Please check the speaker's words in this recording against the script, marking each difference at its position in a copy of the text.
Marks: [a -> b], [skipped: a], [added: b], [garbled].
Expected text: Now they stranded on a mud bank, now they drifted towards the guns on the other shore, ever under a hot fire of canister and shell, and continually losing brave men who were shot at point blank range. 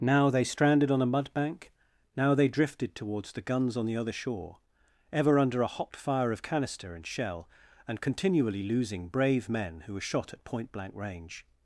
Now they stranded on a mud bank, now they drifted towards the guns on the other shore, ever under a hot fire of canister and shell, and continually losing brave men who were shot at point blank range.